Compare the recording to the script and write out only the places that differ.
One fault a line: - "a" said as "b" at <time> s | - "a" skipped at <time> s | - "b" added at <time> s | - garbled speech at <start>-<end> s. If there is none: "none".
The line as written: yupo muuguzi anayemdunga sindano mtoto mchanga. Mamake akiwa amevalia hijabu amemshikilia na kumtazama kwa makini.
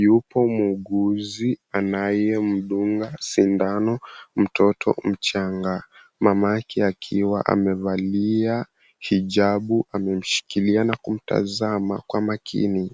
none